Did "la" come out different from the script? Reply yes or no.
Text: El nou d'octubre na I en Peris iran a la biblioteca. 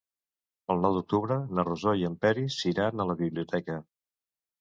no